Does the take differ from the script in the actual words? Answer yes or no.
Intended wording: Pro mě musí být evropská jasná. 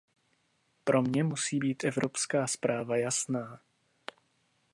yes